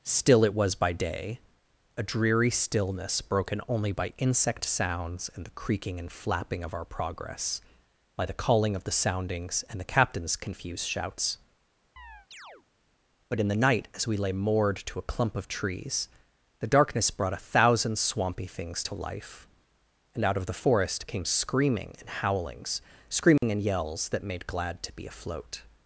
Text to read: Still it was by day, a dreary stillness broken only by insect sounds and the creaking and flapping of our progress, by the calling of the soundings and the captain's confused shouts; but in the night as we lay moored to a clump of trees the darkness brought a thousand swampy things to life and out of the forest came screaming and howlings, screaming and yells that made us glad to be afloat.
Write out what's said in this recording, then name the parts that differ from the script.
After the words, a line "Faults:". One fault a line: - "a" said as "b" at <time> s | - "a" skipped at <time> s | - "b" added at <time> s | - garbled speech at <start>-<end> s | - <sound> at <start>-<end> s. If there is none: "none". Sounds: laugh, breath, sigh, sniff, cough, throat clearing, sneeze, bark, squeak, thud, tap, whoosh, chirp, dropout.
Still it was by day, a dreary stillness broken only by insect sounds and the creaking and flapping of our progress, by the calling of the soundings and the captain's confused shouts; but in the night as we lay moored to a clump of trees the darkness brought a thousand swampy things to life and out of the forest came screaming and howlings, screaming and yells that made glad to be afloat.
Faults:
- chirp at 12.0-12.7 s
- dropout at 23.4-23.4 s
- "us" skipped at 24.5 s